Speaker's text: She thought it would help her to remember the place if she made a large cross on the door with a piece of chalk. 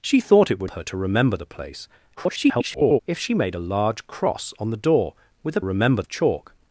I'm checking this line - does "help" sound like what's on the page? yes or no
no